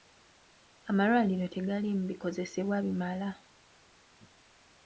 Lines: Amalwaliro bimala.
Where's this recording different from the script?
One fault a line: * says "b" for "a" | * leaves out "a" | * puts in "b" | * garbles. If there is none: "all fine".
* puts in "tegaliimu bikozesebwa"